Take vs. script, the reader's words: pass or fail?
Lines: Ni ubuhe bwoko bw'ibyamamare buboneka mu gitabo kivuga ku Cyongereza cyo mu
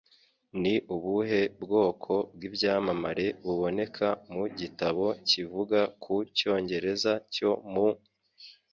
pass